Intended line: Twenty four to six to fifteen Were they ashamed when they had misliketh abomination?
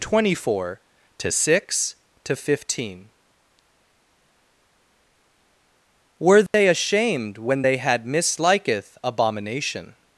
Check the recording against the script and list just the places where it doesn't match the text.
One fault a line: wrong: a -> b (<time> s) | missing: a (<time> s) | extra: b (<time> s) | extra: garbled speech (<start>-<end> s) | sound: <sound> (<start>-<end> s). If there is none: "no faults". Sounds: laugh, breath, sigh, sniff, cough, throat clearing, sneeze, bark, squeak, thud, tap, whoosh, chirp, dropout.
sound: dropout (6.5-6.5 s)